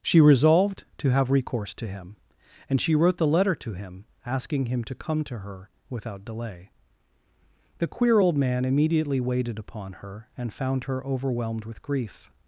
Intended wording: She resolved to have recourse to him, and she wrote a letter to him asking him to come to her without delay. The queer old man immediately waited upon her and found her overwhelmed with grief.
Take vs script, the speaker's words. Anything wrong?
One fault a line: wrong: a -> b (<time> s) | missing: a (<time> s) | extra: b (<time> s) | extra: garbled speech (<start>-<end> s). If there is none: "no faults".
wrong: a -> the (3.2 s)